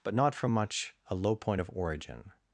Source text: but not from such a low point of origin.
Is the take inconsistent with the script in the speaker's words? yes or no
yes